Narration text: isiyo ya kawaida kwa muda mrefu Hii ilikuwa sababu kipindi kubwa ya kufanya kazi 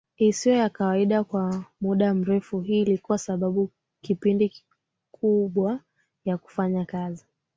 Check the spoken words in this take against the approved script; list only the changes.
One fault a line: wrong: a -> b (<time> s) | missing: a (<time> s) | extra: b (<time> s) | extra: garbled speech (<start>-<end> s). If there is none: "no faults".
no faults